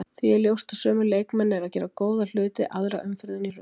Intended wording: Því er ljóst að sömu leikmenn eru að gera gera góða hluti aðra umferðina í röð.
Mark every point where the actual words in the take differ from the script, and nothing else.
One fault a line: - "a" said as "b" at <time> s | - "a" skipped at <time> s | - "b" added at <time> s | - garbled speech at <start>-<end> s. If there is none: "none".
- "gera" skipped at 1.9 s